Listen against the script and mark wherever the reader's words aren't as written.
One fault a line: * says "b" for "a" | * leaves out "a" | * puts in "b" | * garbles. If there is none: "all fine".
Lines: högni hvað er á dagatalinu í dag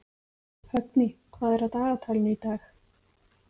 all fine